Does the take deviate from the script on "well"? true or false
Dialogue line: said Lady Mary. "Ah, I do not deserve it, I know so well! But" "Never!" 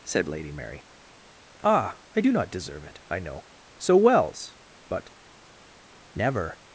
true